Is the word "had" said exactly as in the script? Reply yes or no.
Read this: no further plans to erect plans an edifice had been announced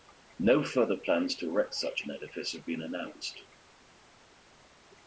no